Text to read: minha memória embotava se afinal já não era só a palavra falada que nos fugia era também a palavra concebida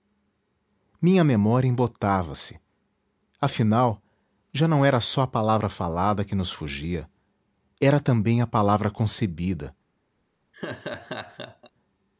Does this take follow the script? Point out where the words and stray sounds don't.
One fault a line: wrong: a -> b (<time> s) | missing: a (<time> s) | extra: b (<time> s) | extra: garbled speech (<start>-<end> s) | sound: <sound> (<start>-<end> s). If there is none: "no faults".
sound: laugh (10.5-11.7 s)